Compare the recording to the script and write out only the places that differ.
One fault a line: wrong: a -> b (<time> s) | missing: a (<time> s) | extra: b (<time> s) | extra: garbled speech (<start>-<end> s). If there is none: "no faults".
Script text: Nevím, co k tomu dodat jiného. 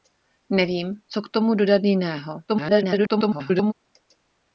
extra: garbled speech (2.5-3.7 s)